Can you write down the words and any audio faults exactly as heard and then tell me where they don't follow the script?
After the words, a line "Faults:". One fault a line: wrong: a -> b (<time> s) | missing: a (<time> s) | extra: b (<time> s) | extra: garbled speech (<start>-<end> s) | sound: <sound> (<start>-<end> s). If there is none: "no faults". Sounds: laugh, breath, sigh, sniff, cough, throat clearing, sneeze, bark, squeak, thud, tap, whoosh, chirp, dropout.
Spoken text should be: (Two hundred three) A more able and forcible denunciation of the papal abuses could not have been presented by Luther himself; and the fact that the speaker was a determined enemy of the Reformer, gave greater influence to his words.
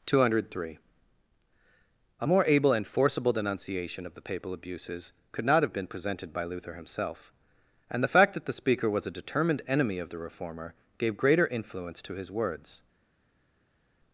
(Two hundred three) A more able and forcible denunciation of the papal abuses could not have been presented by Luther himself; and the fact that the speaker was a determined enemy of the Reformer, gave greater influence to his words.
Faults:
no faults